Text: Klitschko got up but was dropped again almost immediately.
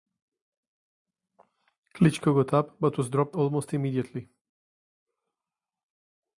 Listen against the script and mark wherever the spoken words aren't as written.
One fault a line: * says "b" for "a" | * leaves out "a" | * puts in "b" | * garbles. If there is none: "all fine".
* leaves out "again"